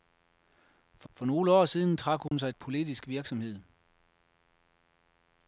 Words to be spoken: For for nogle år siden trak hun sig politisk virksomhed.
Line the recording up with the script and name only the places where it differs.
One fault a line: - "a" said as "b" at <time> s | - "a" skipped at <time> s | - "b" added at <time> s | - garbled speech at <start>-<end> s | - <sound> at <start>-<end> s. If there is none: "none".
- dropout at 2.3-2.3 s